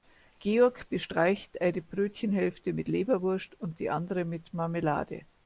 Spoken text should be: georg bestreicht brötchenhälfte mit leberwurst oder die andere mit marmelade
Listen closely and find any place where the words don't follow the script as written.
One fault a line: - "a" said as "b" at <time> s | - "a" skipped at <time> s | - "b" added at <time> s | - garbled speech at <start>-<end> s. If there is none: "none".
- "eine" added at 1.6 s
- "oder" said as "und" at 3.6 s